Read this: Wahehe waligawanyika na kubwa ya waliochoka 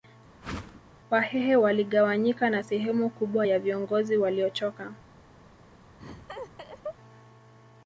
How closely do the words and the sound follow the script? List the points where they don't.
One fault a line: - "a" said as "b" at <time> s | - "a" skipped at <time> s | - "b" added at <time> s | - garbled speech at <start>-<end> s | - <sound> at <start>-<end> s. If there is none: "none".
- whoosh at 0.4-0.8 s
- "sehemu" added at 2.6 s
- "viongozi" added at 3.6 s
- laugh at 6.0-7.0 s